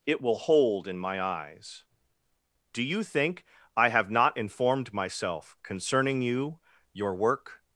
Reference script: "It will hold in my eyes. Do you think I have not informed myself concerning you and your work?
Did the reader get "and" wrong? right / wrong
wrong